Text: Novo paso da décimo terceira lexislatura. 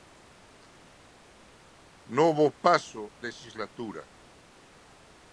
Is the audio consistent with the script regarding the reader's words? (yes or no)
no